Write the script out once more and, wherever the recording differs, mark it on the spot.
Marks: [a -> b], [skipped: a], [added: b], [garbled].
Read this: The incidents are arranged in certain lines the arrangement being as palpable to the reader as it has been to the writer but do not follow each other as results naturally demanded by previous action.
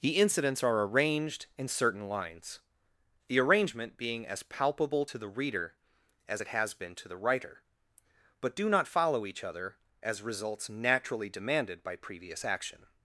The incidents are arranged in certain lines the arrangement being as palpable to the reader as it has been to the writer but do not follow each other as results naturally demanded by previous action.